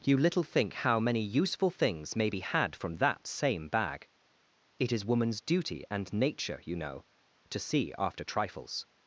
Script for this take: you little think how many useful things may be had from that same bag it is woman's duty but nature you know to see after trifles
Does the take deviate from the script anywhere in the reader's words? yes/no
yes